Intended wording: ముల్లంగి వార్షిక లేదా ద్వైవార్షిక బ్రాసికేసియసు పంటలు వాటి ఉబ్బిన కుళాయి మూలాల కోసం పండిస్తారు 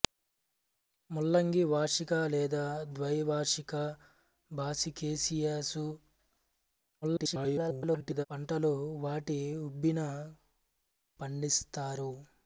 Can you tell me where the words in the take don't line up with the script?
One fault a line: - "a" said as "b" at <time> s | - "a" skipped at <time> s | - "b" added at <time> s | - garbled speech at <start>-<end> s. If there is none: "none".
- garbled speech at 7.0-8.3 s
- "కుళాయి మూలాల కోసం" skipped at 10.0 s